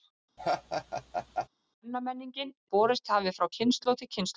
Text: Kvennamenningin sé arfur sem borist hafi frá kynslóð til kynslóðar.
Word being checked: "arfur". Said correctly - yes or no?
no